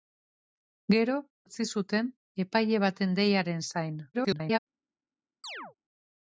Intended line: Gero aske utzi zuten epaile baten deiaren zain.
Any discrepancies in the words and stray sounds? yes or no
yes